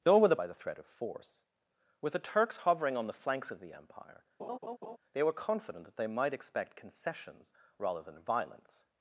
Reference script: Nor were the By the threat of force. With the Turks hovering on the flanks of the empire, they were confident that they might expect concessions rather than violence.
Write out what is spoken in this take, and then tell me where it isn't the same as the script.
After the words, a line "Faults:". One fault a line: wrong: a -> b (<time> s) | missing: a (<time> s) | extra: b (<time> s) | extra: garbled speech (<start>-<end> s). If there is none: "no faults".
Nor were the By the threat of force. With the Turks hovering on the flanks of the empire, they were confident that they might expect concessions rather than violence.
Faults:
no faults